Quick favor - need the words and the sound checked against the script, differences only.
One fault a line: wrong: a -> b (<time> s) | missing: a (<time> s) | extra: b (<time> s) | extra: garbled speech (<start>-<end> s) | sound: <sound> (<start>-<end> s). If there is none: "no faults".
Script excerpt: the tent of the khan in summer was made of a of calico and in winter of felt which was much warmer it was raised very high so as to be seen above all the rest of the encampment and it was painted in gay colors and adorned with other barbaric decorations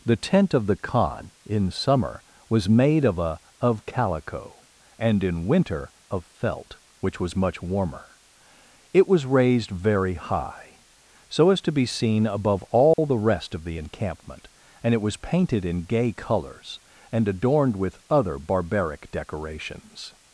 sound: dropout (12.9-13.0 s)